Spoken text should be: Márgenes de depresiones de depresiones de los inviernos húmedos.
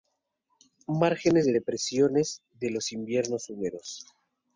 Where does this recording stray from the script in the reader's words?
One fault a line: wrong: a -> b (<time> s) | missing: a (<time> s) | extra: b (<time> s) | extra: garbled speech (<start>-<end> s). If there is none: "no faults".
missing: depresiones de (2.7 s)